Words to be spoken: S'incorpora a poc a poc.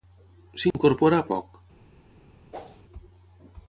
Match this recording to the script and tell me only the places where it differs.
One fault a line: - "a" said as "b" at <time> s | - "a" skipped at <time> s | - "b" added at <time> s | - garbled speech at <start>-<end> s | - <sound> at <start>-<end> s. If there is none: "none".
- dropout at 0.7-0.7 s
- "poc" skipped at 1.3 s
- whoosh at 2.5-2.8 s